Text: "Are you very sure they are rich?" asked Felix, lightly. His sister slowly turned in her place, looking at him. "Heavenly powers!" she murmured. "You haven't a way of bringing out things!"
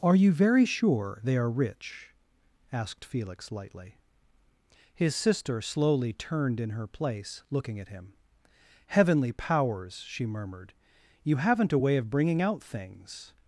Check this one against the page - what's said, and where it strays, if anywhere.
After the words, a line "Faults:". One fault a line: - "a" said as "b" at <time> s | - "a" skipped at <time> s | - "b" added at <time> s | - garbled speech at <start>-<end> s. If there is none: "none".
"Are you very sure they are rich?" asked Felix, lightly. His sister slowly turned in her place, looking at him. "Heavenly powers!" she murmured. "You haven't a way of bringing out things!"
Faults:
none